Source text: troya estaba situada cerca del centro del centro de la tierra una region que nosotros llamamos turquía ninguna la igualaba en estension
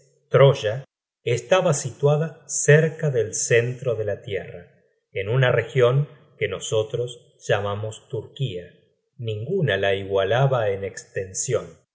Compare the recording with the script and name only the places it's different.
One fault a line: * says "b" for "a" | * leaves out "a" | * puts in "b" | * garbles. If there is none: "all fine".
* leaves out "del centro"
* puts in "en"